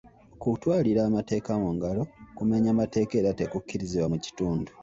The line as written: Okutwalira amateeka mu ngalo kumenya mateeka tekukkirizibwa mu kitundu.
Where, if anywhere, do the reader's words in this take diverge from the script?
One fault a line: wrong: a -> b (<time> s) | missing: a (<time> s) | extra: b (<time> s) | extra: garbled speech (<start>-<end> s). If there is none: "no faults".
extra: era (3.2 s)